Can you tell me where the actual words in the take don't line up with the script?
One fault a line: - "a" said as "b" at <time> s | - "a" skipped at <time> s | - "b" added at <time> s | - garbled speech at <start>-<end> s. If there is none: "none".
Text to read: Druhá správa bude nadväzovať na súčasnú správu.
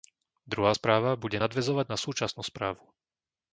none